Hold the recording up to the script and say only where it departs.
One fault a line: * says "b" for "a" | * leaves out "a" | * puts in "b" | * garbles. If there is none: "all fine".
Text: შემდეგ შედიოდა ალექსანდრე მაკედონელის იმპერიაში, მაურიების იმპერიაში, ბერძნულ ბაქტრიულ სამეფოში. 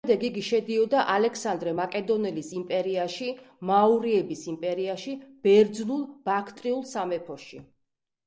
* puts in "იგი"